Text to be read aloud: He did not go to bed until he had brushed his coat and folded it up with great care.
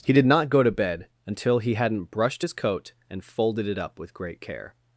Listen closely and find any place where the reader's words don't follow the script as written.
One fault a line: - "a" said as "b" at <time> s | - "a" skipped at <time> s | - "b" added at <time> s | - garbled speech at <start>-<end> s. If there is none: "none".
- "had" said as "hadn't" at 1.8 s